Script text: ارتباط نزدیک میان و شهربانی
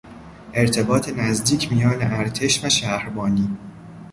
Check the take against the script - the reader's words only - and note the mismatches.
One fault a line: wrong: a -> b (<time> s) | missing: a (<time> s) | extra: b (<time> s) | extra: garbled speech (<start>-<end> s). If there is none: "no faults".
extra: ارتش (2.0 s)